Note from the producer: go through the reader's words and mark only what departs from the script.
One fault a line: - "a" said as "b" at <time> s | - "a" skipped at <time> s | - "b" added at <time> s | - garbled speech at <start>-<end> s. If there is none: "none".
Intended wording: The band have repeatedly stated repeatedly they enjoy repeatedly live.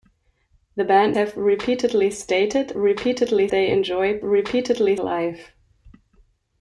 none